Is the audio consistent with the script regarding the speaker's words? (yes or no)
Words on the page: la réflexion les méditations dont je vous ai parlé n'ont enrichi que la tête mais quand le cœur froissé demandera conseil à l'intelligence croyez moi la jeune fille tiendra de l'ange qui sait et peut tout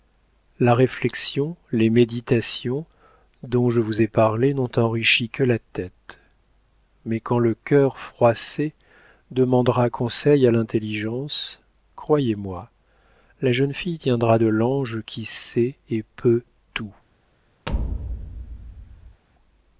yes